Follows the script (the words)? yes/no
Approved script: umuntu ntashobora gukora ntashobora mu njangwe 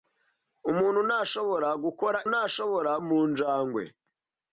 yes